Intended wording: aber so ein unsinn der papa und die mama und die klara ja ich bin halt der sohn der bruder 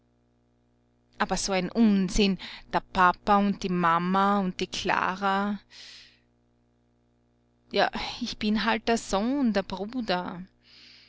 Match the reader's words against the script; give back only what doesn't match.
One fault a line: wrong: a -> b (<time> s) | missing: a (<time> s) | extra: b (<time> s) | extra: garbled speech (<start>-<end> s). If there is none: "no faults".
no faults